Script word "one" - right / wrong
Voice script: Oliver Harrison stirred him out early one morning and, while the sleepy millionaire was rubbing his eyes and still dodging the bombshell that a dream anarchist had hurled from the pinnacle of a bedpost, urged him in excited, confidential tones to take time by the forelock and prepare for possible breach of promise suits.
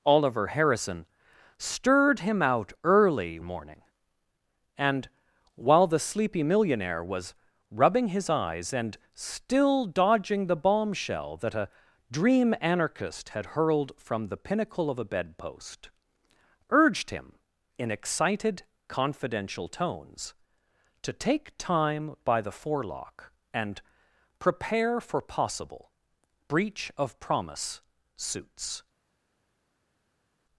wrong